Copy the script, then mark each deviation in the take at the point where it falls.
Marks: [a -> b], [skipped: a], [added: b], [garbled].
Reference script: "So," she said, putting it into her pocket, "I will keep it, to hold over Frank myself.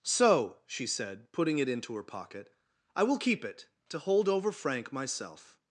"So," she said, putting it into her pocket, "I will keep it, to hold over Frank myself.